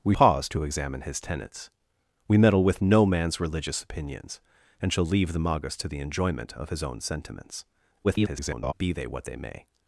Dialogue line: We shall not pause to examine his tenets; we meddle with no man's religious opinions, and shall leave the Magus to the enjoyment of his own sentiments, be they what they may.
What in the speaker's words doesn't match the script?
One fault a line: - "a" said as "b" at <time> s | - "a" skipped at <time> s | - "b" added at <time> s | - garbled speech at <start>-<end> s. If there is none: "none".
- "shall not" skipped at 0.1 s
- garbled speech at 8.0-8.7 s